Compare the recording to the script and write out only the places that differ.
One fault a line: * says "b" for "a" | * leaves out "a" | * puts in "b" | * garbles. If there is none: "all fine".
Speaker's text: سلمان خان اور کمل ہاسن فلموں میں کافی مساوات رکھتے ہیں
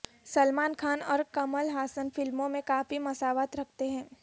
all fine